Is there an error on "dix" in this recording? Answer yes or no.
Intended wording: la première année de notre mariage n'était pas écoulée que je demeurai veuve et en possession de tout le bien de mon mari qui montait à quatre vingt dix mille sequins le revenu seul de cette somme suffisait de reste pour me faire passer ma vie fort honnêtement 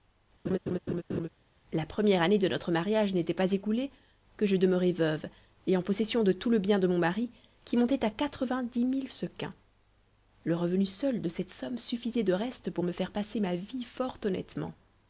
no